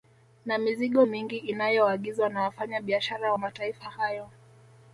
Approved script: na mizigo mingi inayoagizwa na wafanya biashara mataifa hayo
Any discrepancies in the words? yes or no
no